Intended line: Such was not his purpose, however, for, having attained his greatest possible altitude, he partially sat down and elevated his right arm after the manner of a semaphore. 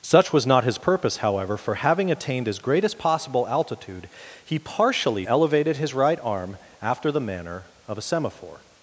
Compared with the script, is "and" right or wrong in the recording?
wrong